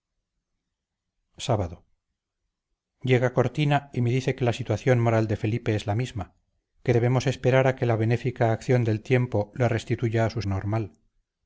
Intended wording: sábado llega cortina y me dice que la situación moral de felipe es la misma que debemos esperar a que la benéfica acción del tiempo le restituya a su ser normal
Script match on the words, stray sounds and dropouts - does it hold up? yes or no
no